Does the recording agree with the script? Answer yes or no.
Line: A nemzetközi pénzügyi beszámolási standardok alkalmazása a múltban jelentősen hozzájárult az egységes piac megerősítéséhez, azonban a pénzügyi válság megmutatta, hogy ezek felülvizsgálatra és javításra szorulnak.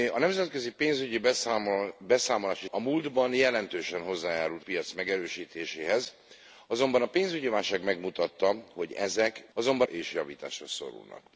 no